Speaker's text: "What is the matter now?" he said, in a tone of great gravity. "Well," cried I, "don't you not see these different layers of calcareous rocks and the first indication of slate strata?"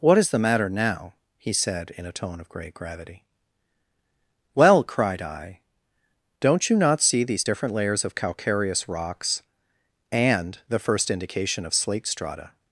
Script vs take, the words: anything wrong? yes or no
no